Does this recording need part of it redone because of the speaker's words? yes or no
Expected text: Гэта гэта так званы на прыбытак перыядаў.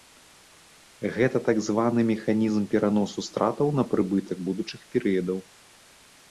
yes